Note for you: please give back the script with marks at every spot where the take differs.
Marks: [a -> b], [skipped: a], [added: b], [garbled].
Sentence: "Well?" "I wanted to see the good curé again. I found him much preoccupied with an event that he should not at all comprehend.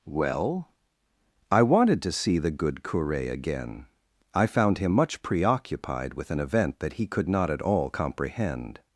"Well?" "I wanted to see the good curé again. I found him much preoccupied with an event that he [should -> could] not at all comprehend.